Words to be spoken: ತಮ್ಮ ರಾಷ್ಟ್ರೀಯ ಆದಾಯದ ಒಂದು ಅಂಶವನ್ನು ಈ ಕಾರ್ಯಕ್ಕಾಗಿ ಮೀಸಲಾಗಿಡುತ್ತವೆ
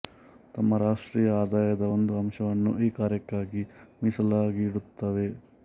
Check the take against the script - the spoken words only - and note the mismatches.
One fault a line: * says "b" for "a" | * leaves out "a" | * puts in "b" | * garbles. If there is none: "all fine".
all fine